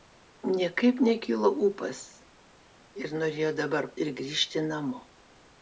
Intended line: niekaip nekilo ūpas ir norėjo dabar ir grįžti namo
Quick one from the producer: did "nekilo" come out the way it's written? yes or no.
yes